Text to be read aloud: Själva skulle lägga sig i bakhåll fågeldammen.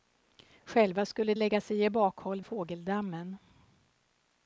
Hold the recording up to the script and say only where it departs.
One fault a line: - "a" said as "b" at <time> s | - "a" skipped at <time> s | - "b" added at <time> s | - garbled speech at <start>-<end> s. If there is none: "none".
none